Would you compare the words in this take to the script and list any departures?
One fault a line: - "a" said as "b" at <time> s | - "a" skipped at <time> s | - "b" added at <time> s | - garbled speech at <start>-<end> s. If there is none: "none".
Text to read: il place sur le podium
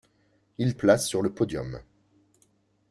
none